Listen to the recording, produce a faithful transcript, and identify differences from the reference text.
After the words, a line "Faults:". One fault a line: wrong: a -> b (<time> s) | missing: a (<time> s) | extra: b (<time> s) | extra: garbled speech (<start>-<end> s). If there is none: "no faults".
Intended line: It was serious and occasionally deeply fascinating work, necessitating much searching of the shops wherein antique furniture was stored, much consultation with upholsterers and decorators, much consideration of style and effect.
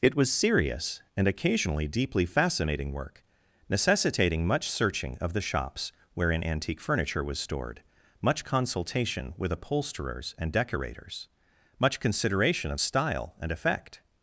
It was serious and occasionally deeply fascinating work, necessitating much searching of the shops wherein antique furniture was stored, much consultation with upholsterers and decorators, much consideration of style and effect.
Faults:
no faults